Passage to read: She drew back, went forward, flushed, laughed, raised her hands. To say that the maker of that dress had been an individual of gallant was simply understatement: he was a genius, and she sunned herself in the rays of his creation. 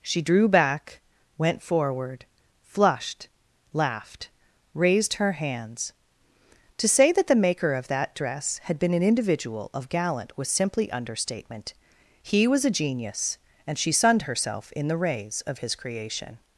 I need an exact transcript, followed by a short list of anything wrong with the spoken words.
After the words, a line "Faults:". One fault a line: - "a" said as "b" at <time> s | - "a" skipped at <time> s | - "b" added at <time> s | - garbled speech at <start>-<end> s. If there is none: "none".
She drew back, went forward, flushed, laughed, raised her hands. To say that the maker of that dress had been an individual of gallant was simply understatement: he was a genius, and she sunned herself in the rays of his creation.
Faults:
none